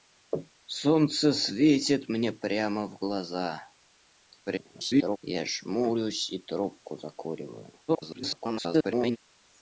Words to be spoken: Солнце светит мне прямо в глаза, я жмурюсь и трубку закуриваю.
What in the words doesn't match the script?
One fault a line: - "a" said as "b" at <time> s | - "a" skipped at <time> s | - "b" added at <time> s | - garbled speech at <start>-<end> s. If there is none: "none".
- garbled speech at 4.5-5.2 s
- garbled speech at 7.9-9.2 s